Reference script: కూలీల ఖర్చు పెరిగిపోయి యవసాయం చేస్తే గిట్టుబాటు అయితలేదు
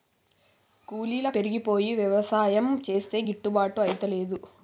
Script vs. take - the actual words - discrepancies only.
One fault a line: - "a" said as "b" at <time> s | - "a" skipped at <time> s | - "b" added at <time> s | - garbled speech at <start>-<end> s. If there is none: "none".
- "ఖర్చు" skipped at 1.3 s